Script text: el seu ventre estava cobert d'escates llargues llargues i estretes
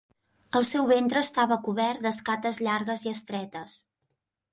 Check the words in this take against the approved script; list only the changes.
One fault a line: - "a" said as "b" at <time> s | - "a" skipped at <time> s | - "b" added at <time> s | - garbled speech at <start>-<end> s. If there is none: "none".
- "llargues" skipped at 3.0 s